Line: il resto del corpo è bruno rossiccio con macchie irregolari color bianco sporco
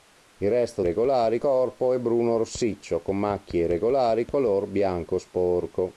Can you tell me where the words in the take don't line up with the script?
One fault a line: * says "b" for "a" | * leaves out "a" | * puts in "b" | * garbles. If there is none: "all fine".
* says "irregolari" for "del"